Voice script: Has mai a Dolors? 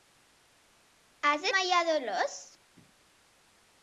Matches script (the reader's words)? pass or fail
pass